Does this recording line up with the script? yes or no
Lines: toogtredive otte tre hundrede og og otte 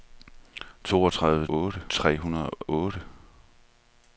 yes